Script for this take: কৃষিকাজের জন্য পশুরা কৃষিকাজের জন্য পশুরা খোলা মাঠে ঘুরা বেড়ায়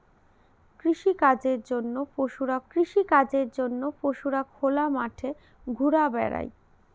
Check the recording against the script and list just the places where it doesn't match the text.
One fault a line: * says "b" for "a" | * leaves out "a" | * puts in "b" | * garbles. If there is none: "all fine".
all fine